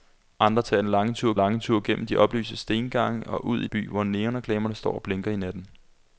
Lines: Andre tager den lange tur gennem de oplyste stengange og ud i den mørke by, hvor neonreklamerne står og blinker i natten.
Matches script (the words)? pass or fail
fail